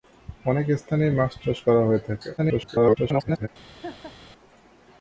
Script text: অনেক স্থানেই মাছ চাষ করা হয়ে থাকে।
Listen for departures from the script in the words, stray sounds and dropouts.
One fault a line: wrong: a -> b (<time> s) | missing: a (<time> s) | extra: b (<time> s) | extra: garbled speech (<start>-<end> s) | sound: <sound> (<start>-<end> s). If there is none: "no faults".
extra: garbled speech (2.4-3.5 s)
sound: laugh (3.8-4.1 s)